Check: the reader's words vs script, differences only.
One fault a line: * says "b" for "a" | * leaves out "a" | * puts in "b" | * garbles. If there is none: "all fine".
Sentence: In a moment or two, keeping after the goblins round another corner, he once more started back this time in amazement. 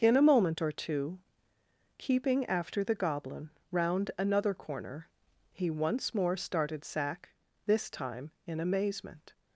* says "goblin" for "goblins"
* says "sack" for "back"